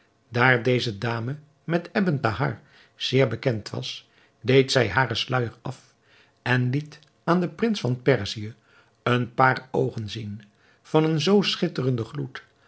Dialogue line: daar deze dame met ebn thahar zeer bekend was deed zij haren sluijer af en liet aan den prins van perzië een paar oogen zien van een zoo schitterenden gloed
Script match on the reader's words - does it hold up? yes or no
yes